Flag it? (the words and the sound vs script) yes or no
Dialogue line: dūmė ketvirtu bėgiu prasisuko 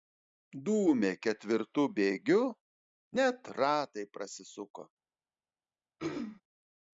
yes